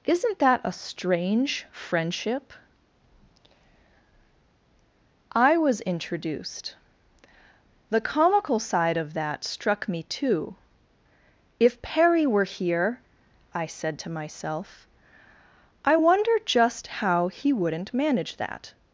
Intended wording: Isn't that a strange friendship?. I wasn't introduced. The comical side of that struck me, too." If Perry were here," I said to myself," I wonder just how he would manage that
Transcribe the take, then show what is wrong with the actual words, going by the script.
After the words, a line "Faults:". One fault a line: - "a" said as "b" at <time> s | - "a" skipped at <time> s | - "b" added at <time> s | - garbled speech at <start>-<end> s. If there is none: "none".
Isn't that a strange friendship?. I was introduced. The comical side of that struck me, too." If Perry were here," I said to myself," I wonder just how he wouldn't manage that
Faults:
- "wasn't" said as "was" at 5.6 s
- "would" said as "wouldn't" at 17.5 s